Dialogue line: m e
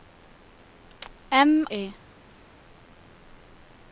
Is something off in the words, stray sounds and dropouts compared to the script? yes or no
no